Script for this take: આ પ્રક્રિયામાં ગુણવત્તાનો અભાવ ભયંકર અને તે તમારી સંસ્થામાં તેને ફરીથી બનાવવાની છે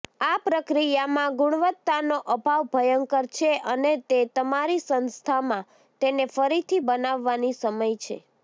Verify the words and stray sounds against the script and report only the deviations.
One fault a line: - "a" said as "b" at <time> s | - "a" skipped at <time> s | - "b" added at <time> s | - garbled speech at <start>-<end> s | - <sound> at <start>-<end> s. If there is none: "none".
- "છે" added at 3.3 s
- "સમય" added at 7.6 s